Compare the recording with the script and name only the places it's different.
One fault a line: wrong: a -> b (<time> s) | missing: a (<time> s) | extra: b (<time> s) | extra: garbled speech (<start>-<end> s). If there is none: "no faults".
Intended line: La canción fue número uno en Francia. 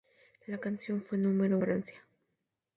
missing: uno en (1.6 s)